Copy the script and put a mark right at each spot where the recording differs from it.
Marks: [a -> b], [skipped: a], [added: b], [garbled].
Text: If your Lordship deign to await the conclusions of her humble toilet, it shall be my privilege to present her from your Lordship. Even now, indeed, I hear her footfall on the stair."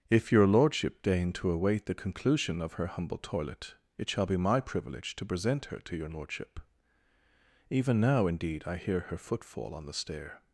If your Lordship deign to await the [conclusions -> conclusion] of her humble toilet, it shall be my privilege to present her [from -> to] your Lordship. Even now, indeed, I hear her footfall on the stair."